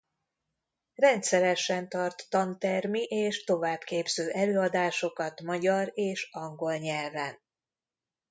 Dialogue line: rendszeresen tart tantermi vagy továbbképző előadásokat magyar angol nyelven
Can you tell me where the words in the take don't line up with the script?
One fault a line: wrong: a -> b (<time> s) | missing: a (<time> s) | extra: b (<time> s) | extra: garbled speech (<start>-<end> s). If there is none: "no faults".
wrong: vagy -> és (3.0 s)
extra: és (5.9 s)